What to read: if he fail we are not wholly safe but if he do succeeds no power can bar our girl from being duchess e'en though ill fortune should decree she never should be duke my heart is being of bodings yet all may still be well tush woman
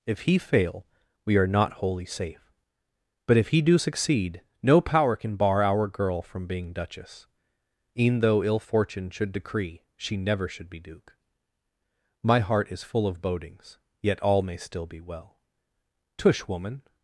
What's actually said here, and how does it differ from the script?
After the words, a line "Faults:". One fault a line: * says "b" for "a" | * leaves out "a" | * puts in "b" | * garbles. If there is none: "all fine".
if he fail we are not wholly safe but if he do succeed no power can bar our girl from being duchess e'en though ill fortune should decree she never should be duke my heart is full of bodings yet all may still be well tush woman
Faults:
* says "succeed" for "succeeds"
* says "full" for "being"